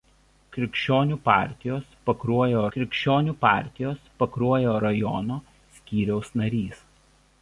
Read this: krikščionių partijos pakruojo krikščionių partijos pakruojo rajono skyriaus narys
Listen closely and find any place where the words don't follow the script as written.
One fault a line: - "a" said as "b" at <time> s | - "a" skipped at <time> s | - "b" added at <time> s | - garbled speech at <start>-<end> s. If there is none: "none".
none